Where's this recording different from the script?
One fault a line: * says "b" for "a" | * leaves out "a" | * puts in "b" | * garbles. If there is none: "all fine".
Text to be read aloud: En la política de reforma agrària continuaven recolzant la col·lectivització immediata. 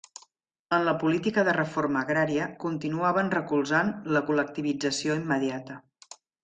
all fine